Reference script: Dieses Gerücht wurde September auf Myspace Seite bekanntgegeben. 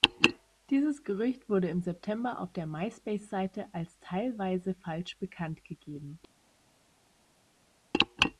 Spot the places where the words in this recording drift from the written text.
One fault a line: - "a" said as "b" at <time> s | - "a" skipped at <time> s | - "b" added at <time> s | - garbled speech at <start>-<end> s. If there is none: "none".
- "im" added at 1.7 s
- "der" added at 2.5 s
- "als teilweise falsch" added at 3.7 s